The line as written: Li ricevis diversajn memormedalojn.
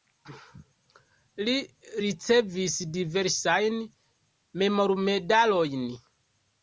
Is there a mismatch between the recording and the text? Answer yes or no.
no